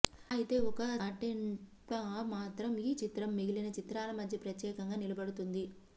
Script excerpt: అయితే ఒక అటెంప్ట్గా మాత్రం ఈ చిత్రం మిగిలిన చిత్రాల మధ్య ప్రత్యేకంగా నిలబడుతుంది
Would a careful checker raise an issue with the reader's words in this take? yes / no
no